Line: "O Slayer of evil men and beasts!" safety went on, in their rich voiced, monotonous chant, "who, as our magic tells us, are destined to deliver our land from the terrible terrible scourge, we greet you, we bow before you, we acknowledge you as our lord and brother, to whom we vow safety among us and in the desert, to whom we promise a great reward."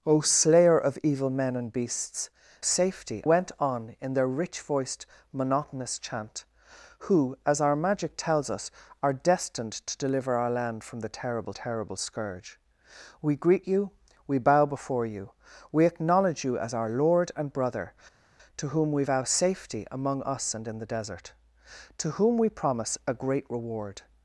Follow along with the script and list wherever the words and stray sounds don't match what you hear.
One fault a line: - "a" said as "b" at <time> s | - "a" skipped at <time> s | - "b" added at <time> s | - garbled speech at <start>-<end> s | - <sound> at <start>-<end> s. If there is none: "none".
none